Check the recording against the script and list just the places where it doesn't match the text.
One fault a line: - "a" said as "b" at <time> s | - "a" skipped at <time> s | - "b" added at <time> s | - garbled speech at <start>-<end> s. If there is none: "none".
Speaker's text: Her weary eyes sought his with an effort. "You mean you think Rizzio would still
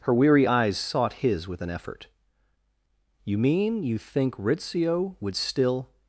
none